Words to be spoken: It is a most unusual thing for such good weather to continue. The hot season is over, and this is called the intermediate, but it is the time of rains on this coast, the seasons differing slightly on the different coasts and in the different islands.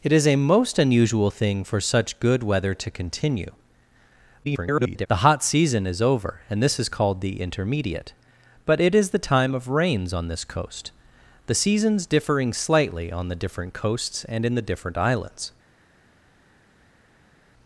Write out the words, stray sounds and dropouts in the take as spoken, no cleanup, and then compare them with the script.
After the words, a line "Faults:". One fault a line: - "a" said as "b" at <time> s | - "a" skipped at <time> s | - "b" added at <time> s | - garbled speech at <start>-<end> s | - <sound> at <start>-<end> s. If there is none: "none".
It is a most unusual thing for such good weather to continue. [garbled] The hot season is over, and this is called the intermediate, but it is the time of rains on this coast, the seasons differing slightly on the different coasts and in the different islands.
Faults:
- garbled speech at 4.4-5.1 s